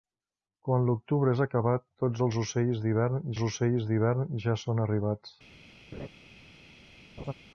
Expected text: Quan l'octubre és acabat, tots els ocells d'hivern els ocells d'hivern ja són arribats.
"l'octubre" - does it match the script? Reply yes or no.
yes